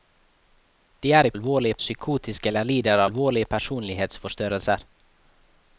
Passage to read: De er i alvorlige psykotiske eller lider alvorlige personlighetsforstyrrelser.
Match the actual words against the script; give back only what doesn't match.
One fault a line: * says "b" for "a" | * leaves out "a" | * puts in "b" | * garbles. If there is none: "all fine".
all fine